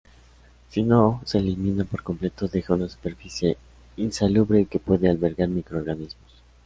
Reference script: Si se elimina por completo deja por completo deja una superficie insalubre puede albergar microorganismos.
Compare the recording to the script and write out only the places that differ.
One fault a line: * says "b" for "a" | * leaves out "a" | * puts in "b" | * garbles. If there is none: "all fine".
* puts in "no"
* leaves out "por completo deja"
* puts in "que"